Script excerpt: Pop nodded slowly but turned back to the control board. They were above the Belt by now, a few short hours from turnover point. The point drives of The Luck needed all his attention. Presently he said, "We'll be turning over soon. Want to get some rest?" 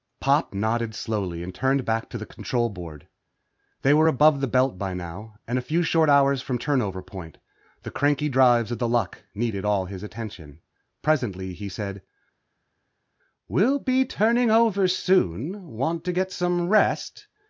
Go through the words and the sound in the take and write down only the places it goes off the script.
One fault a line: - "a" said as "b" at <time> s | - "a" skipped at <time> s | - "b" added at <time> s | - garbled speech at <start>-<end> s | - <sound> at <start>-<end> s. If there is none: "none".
- "but" said as "and" at 1.4 s
- "and" added at 5.5 s
- "point" said as "cranky" at 7.9 s